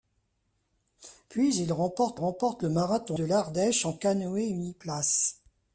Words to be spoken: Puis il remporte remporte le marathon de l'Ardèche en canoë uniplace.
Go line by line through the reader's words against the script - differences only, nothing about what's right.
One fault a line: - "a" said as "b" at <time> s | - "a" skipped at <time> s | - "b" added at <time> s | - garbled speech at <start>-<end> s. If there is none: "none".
none